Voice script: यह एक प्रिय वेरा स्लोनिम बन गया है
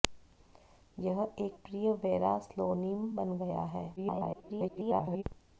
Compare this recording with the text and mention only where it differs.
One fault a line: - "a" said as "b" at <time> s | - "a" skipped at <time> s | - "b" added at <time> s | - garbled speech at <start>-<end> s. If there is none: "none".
- garbled speech at 4.0-5.2 s